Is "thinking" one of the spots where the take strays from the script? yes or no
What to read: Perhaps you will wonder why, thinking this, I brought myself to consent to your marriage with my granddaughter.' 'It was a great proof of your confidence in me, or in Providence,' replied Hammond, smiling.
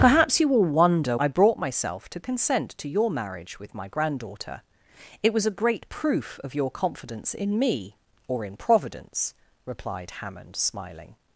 yes